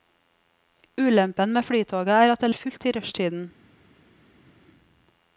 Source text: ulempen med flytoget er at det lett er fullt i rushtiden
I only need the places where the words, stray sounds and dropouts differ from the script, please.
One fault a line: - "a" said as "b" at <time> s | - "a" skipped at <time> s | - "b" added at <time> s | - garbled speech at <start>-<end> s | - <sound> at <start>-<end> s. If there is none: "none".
- "lett" skipped at 2.5 s